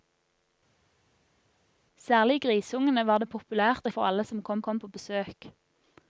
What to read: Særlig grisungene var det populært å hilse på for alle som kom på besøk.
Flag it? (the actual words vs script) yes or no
yes